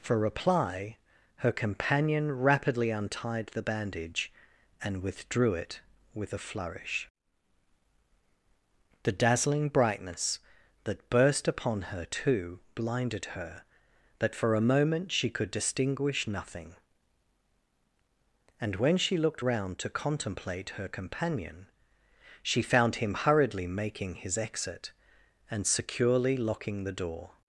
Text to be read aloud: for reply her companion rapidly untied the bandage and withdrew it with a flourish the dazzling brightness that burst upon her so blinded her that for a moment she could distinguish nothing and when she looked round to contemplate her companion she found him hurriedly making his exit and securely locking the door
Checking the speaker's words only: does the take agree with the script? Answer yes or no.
no